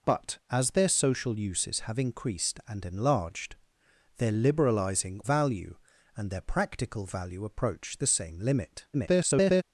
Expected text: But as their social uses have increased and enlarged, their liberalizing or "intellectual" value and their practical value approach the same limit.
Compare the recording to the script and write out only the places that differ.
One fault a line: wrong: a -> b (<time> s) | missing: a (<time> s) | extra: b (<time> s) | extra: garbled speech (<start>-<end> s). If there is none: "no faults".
missing: or intellectual (5.2 s)
extra: garbled speech (8.9-9.6 s)